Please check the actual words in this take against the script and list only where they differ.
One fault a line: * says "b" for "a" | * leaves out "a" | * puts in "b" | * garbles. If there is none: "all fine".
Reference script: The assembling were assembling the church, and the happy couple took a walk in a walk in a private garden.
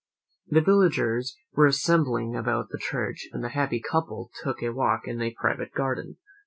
* says "villagers" for "assembling"
* puts in "about"
* leaves out "walk in a"